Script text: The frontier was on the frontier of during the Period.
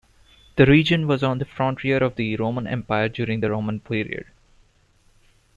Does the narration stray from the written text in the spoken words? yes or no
yes